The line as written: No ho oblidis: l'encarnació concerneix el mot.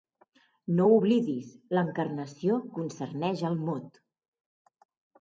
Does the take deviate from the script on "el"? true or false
false